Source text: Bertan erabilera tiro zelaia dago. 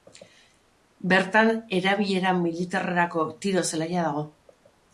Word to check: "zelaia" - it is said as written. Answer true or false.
true